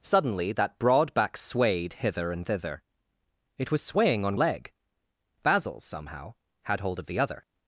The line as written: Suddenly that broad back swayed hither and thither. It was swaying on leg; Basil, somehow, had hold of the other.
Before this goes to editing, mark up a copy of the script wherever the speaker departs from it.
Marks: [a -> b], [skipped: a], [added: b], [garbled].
Suddenly that broad back swayed hither and thither. It was swaying on leg; Basil, somehow, had hold of the other.